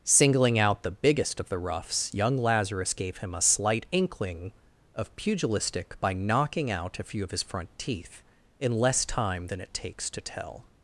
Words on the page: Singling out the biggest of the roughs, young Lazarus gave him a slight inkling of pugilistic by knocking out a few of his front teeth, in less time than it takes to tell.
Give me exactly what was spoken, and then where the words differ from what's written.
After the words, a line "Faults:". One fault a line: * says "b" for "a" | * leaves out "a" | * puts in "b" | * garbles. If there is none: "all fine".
Singling out the biggest of the roughs, young Lazarus gave him a slight inkling of pugilistic by knocking out a few of his front teeth, in less time than it takes to tell.
Faults:
all fine